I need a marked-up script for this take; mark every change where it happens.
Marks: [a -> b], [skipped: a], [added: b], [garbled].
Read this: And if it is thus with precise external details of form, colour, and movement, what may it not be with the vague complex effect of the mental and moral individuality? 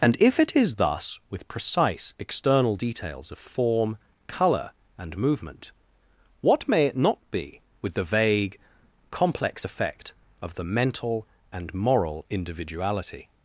And if it is thus with precise external details of form, colour, and movement, what may it not be with the vague complex effect of the mental and moral individuality?